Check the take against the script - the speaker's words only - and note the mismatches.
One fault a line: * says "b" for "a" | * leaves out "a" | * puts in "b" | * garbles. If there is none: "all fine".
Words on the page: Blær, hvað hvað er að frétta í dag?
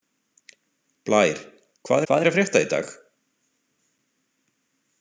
all fine